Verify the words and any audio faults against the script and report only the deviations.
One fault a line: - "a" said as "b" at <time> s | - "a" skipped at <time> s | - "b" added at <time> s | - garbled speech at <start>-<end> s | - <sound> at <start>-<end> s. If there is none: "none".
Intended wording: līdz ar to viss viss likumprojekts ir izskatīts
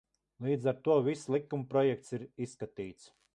- "viss" skipped at 1.3 s